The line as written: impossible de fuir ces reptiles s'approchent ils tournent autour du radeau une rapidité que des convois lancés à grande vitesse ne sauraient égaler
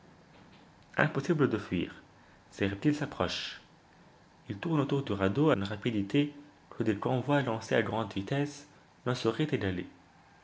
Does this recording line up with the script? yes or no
yes